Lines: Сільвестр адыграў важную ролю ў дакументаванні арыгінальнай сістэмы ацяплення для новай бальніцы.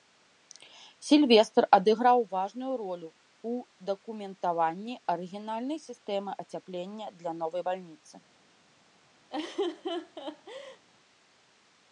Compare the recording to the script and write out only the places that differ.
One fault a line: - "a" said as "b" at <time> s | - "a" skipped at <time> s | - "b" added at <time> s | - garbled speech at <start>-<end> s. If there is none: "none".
none